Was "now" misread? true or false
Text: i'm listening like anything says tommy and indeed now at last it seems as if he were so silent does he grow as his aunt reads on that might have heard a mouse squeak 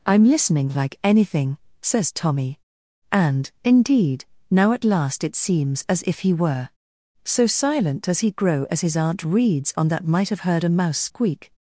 false